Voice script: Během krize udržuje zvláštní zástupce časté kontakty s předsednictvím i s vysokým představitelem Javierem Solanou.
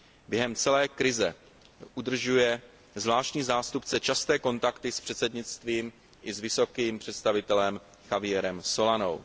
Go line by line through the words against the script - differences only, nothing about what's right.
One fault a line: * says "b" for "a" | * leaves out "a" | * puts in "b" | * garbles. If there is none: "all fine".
* puts in "celé"